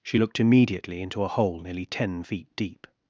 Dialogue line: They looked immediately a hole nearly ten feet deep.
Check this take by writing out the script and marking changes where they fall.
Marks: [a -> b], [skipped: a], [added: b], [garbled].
[They -> She] looked immediately [added: into] a hole nearly ten feet deep.